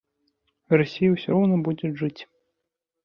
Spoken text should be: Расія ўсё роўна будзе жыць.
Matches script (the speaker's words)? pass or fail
pass